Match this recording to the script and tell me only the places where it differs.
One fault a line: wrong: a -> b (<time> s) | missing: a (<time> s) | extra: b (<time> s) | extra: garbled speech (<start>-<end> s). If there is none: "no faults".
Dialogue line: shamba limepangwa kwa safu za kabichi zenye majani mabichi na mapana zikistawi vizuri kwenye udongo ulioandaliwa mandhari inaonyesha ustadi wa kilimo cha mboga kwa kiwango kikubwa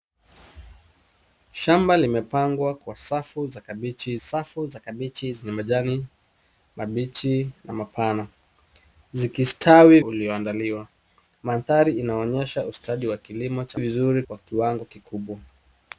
extra: safu za kabichi (4.2 s)
missing: vizuri kwenye udongo (10.0 s)
wrong: mboga -> vizuri (13.7 s)